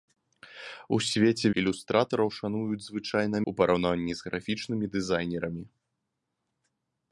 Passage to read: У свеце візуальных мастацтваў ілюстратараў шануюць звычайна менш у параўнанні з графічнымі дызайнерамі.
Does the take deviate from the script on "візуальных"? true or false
true